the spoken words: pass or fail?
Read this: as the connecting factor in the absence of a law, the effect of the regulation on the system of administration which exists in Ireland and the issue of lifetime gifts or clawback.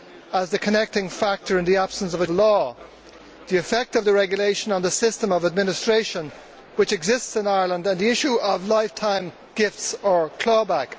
pass